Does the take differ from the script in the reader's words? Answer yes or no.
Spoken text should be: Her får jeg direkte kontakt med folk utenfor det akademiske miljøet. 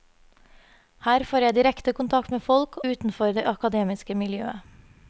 no